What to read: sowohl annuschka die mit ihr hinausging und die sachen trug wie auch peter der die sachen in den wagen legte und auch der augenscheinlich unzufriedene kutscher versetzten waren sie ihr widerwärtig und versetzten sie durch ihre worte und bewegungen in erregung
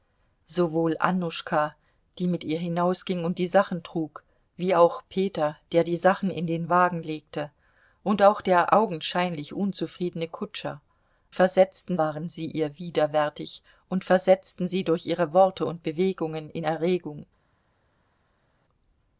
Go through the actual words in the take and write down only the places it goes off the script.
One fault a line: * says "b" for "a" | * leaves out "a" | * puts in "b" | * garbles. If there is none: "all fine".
all fine